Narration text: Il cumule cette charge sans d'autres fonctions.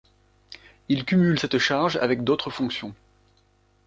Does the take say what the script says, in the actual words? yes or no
no